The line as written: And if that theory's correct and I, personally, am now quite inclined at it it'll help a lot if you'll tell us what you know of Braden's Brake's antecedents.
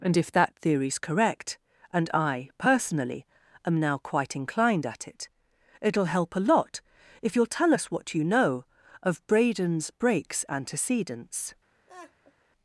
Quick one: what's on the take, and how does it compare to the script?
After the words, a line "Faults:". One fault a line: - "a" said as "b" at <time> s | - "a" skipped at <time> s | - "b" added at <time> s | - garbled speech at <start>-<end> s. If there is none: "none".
And if that theory's correct and I, personally, am now quite inclined at it it'll help a lot if you'll tell us what you know of Braden's Brake's antecedents.
Faults:
none